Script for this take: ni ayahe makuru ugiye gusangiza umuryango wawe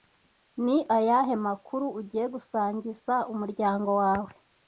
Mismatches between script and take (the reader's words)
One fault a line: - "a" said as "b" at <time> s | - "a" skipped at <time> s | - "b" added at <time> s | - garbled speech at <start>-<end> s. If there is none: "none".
none